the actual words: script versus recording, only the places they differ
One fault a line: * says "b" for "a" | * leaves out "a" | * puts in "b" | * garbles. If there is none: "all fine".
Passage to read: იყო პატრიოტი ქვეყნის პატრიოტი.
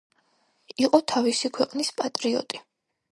* says "თავისი" for "პატრიოტი"